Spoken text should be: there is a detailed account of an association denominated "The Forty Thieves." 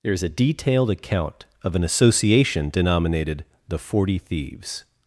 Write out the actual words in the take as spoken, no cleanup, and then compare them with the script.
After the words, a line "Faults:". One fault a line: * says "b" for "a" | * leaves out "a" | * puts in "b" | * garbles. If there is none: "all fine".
there is a detailed account of an association denominated "The Forty Thieves."
Faults:
all fine